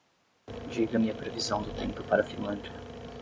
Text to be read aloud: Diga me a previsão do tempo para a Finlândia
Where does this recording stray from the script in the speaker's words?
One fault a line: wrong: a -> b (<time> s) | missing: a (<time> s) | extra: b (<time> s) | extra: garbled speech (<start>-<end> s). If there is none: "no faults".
no faults